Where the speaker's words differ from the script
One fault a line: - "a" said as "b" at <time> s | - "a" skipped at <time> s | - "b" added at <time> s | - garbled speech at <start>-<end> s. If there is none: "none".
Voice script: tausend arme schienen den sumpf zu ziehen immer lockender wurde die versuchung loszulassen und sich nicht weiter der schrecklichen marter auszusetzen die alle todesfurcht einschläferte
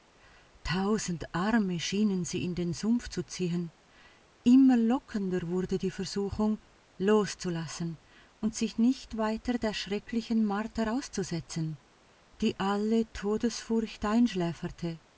- "sie in" added at 2.2 s